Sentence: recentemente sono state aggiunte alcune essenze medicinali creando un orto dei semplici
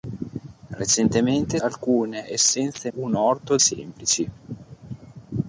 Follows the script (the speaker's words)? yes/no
no